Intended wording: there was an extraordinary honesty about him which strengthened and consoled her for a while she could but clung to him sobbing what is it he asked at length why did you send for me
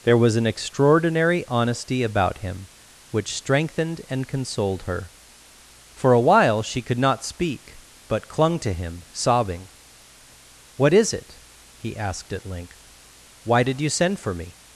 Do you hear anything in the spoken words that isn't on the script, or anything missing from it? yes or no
yes